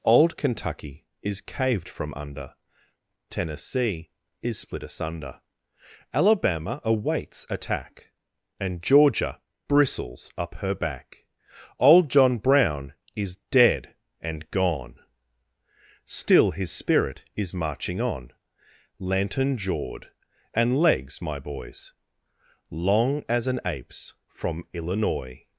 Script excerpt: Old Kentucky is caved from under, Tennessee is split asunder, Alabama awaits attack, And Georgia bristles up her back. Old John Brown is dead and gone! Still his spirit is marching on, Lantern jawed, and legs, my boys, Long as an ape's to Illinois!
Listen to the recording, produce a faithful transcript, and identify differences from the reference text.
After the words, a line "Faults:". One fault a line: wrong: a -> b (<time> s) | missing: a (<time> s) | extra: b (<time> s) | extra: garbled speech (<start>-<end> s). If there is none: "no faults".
Old Kentucky is caved from under, Tennessee is split asunder, Alabama awaits attack, And Georgia bristles up her back. Old John Brown is dead and gone! Still his spirit is marching on, Lantern jawed, and legs, my boys, Long as an ape's from Illinois!
Faults:
wrong: to -> from (24.3 s)